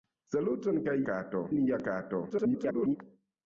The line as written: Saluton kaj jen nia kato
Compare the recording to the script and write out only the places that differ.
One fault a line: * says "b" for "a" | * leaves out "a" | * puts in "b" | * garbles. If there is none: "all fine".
* says "kato" for "jen"
* garbles